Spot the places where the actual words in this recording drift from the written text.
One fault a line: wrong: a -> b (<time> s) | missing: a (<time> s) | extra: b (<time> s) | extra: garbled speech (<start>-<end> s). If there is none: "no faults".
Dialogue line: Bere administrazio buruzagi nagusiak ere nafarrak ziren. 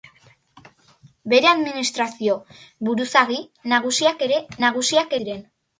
wrong: nafarrak -> nagusiak (4.7 s)